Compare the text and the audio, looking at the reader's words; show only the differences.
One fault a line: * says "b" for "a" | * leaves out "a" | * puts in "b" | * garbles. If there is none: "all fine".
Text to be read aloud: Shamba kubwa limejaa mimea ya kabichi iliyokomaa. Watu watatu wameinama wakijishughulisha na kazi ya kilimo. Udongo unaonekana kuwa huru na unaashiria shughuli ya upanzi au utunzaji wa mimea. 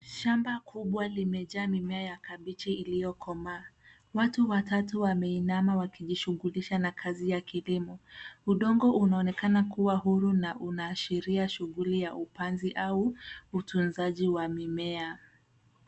all fine